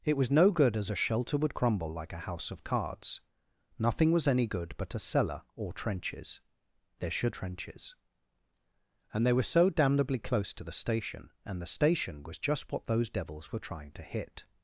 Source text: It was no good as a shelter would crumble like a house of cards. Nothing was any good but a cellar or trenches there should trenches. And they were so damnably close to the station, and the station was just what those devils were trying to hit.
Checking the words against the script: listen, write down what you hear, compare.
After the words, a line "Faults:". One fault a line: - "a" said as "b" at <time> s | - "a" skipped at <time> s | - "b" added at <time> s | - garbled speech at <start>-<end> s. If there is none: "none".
It was no good as a shelter would crumble like a house of cards. Nothing was any good but a cellar or trenches there should trenches. And they were so damnably close to the station, and the station was just what those devils were trying to hit.
Faults:
none